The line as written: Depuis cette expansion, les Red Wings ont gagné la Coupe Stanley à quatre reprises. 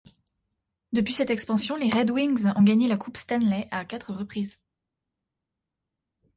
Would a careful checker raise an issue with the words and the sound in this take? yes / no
no